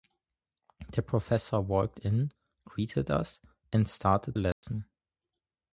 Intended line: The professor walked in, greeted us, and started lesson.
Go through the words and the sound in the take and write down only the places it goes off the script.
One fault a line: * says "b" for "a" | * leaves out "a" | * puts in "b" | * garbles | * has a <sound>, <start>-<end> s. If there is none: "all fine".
* has a dropout, 4.5-4.6 s